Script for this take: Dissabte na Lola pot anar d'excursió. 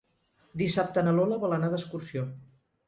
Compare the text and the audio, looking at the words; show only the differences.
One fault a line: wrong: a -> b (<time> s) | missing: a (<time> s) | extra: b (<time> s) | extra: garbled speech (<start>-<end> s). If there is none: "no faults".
wrong: pot -> vol (1.5 s)